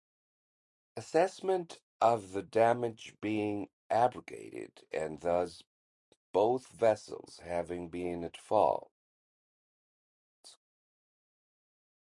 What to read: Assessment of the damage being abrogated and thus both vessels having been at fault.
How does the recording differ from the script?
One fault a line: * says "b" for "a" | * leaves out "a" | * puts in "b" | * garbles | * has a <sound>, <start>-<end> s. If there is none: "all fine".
all fine